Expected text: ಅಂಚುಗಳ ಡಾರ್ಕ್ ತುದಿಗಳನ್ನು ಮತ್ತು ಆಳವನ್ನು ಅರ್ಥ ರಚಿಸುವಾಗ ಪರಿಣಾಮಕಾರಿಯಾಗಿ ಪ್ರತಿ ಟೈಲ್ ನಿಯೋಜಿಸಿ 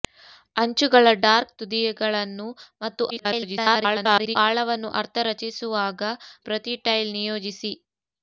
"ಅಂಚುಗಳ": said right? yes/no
yes